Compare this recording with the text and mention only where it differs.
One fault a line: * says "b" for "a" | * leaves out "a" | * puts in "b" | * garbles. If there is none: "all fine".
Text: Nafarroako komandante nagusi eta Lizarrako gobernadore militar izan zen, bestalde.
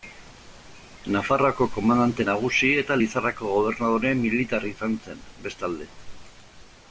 all fine